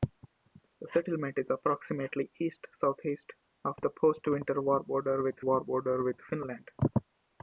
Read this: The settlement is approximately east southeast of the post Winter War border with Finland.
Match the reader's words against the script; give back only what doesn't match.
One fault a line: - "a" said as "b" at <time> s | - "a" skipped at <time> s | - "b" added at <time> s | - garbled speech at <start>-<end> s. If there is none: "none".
- "War border with" added at 5.4 s